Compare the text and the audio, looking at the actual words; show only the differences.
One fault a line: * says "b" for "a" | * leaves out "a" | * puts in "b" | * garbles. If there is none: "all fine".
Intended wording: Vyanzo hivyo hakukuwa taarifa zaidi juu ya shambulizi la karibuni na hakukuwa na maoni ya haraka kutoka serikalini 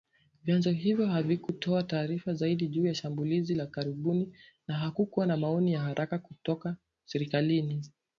* says "havikutoa" for "hakukuwa"